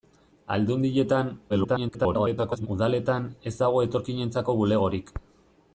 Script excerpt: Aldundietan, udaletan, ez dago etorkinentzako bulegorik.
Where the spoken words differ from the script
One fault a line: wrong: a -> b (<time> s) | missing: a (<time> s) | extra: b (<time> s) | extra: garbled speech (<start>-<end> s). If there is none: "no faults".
extra: garbled speech (1.5-2.7 s)